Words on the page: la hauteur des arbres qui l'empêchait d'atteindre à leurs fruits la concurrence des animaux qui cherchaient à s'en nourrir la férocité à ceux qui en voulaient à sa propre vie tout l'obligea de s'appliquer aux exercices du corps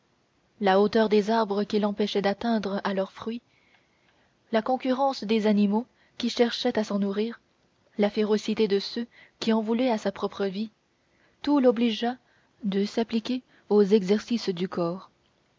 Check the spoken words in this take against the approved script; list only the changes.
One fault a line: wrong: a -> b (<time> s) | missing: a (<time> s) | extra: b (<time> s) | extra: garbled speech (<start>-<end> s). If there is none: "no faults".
wrong: à -> de (8.7 s)